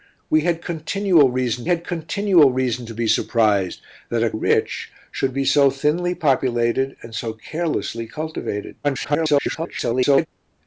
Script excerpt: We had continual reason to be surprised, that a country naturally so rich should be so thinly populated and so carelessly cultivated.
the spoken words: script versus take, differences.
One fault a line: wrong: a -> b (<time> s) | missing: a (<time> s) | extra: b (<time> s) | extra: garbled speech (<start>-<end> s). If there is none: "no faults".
extra: had continual reason (1.6 s)
missing: country naturally so (4.3 s)
extra: garbled speech (8.8-10.3 s)